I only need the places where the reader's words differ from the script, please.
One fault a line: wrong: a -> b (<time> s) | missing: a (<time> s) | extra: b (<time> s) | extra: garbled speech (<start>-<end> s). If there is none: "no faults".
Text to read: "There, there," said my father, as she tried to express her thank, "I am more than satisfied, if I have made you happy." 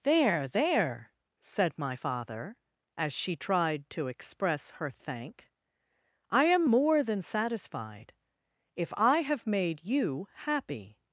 no faults